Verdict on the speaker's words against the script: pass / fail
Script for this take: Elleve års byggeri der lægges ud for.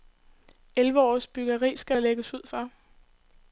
fail